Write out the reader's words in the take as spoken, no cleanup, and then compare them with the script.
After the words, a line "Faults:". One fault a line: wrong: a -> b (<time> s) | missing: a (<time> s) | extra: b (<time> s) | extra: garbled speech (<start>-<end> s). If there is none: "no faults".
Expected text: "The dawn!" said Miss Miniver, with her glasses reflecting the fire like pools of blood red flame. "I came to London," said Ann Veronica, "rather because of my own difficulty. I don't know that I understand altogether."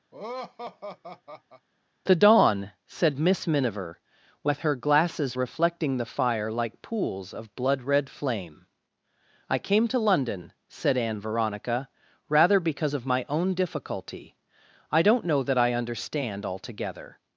"The dawn!" said Miss Miniver, with her glasses reflecting the fire like pools of blood red flame. "I came to London," said Ann Veronica, "rather because of my own difficulty. I don't know that I understand altogether."
Faults:
no faults